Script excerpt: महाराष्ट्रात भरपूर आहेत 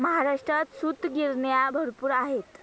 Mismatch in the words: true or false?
true